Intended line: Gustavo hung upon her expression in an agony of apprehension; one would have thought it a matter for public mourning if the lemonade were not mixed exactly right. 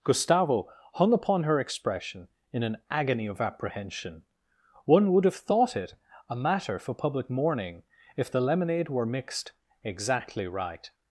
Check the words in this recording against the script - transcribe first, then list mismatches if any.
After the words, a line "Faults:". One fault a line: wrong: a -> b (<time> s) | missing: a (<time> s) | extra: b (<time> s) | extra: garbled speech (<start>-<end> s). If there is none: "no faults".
Gustavo hung upon her expression in an agony of apprehension; one would have thought it a matter for public mourning if the lemonade were mixed exactly right.
Faults:
missing: not (9.1 s)